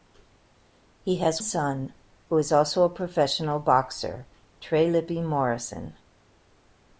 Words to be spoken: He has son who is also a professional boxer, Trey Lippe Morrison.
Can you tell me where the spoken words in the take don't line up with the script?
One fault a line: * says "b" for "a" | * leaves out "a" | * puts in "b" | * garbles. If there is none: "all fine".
all fine